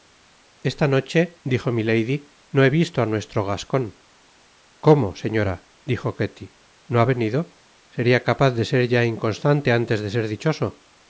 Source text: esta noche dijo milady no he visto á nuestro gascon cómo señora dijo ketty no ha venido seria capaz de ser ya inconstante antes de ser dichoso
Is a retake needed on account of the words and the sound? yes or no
no